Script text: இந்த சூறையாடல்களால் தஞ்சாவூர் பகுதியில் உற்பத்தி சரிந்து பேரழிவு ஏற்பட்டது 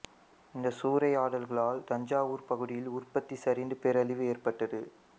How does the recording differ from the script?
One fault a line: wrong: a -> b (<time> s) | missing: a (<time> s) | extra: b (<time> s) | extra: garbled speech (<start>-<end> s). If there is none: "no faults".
no faults